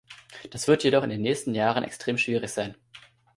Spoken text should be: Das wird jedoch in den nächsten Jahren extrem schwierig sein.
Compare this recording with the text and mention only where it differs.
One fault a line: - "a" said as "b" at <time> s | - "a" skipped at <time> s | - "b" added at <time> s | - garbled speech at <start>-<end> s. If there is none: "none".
none